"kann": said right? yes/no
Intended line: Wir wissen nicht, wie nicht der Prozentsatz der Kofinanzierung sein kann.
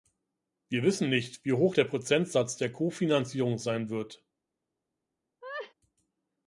no